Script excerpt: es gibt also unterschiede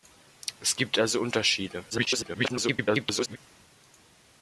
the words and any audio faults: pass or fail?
fail